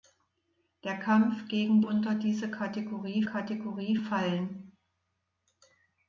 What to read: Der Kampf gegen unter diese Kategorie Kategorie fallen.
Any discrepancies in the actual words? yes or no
no